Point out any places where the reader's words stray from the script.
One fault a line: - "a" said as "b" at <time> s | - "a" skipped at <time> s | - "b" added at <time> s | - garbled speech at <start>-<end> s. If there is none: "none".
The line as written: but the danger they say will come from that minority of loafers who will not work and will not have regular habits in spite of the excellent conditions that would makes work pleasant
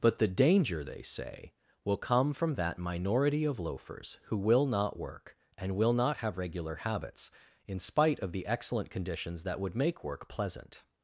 - "makes" said as "make" at 9.8 s